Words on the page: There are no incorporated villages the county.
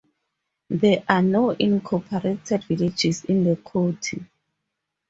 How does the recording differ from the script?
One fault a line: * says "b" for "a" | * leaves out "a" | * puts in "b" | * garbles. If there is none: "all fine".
* puts in "in"